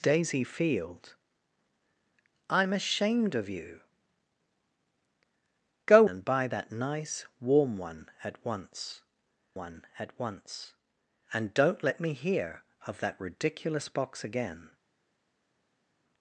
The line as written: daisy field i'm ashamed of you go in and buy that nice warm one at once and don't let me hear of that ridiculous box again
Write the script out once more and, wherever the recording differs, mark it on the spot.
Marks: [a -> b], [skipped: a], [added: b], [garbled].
daisy field i'm ashamed of you go [skipped: in] and buy that nice warm one at once [added: one at once] and don't let me hear of that ridiculous box again